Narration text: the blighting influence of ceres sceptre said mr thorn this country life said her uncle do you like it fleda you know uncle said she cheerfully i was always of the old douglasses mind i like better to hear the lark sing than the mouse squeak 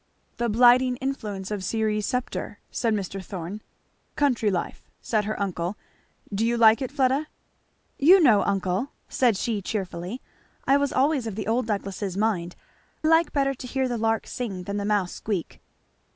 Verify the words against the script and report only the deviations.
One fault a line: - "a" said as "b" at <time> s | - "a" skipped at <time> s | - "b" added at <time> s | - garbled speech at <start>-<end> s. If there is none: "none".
- "this" skipped at 3.6 s
- "i" skipped at 12.5 s